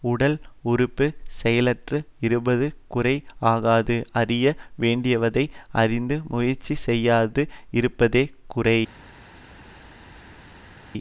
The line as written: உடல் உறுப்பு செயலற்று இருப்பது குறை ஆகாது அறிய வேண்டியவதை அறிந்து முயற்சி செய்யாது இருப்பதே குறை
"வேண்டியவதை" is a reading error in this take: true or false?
false